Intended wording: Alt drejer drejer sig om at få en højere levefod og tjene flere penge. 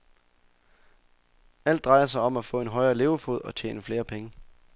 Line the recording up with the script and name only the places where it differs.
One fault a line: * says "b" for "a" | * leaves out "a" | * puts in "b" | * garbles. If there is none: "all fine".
* leaves out "drejer"